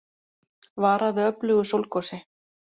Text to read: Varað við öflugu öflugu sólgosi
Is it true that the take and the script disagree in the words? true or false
true